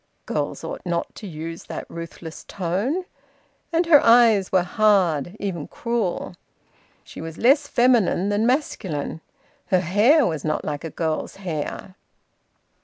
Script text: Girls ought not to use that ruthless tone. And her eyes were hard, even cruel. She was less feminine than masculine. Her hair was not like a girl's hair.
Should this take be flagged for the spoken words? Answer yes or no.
no